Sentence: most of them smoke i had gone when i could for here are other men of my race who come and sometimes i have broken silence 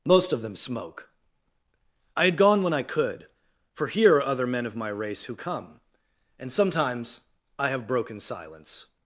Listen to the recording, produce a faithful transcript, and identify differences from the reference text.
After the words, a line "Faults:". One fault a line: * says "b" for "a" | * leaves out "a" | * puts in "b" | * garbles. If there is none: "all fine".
most of them smoke i had gone when i could for here are other men of my race who come and sometimes i have broken silence
Faults:
all fine